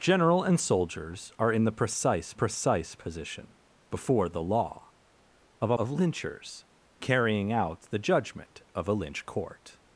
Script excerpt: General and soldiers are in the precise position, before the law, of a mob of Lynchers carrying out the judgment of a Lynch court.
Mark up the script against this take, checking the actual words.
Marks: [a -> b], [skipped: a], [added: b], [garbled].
General and soldiers are in the precise [added: precise] position, before the law, of a [skipped: mob] of Lynchers carrying out the judgment of a Lynch court.